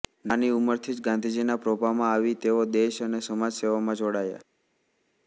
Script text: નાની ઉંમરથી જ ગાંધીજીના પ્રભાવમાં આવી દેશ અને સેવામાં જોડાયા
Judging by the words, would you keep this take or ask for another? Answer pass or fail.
fail